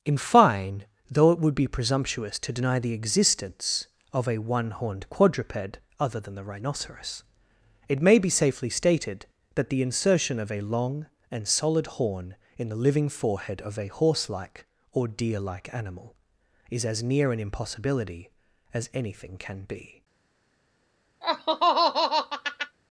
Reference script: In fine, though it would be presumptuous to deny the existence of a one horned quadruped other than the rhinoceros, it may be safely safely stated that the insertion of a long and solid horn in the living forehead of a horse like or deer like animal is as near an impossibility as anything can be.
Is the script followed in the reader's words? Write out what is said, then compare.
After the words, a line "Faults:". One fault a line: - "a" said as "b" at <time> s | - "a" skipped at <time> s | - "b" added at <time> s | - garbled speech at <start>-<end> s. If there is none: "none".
In fine, though it would be presumptuous to deny the existence of a one horned quadruped other than the rhinoceros, it may be safely stated that the insertion of a long and solid horn in the living forehead of a horse like or deer like animal is as near an impossibility as anything can be.
Faults:
- "safely" skipped at 8.7 s